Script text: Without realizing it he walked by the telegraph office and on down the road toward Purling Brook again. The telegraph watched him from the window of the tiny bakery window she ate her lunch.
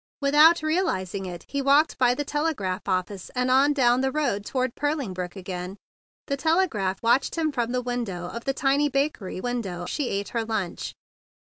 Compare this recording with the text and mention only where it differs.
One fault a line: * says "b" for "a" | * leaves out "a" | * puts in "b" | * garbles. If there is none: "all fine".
all fine